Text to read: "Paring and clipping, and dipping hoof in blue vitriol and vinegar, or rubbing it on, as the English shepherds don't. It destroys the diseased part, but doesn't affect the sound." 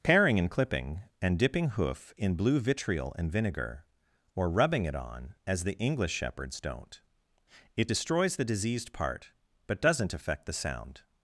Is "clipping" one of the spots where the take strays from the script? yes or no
no